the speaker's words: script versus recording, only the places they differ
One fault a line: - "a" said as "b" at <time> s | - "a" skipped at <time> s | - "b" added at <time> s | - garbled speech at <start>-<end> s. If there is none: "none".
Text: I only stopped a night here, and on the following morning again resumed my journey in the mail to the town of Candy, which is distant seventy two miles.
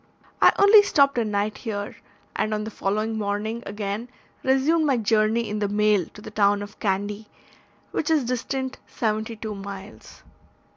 none